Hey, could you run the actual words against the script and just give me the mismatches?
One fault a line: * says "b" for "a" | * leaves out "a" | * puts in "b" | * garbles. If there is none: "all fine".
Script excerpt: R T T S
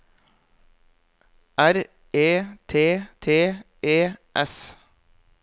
* puts in "E"
* puts in "E"